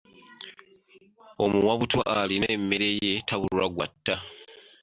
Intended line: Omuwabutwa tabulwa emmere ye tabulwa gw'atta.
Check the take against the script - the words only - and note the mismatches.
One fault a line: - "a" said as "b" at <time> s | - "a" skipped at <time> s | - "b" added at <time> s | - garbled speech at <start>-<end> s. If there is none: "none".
- "tabulwa" said as "alina" at 2.2 s